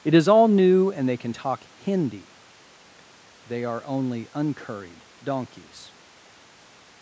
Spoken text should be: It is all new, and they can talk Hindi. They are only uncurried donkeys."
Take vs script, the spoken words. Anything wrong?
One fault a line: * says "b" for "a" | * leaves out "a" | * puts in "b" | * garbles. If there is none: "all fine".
all fine